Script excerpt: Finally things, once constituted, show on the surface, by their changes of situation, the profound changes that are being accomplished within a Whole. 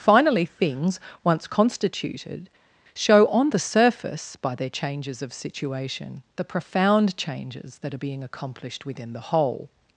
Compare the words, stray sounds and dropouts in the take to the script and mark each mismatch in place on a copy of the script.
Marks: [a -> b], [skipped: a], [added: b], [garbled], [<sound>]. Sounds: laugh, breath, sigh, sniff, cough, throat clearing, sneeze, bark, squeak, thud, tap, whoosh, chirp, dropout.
Finally things, once constituted, show on the surface, by their changes of situation, the profound changes that are being accomplished within [a -> the] Whole.